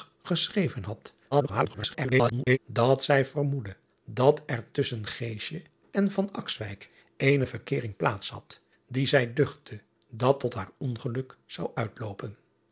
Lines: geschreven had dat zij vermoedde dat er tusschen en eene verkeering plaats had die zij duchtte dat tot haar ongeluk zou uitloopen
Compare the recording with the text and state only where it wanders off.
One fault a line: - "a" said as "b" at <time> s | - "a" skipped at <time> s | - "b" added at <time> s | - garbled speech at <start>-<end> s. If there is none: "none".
- garbled speech at 1.3-2.6 s